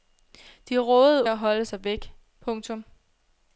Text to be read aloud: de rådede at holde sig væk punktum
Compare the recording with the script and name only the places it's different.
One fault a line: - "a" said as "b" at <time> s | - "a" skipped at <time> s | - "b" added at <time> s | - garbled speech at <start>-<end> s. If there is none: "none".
none